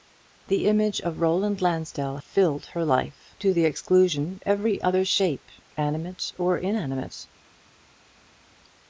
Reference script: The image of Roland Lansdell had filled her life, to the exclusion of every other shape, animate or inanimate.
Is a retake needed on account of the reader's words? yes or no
yes